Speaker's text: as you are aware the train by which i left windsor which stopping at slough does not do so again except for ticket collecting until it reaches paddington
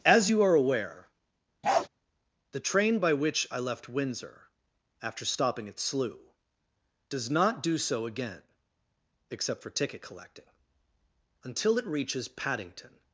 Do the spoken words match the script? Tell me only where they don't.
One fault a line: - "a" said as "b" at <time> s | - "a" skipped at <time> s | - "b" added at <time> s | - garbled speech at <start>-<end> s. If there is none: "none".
- "which" said as "after" at 5.0 s